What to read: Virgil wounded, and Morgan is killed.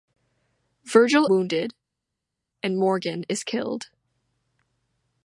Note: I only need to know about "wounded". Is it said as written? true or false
true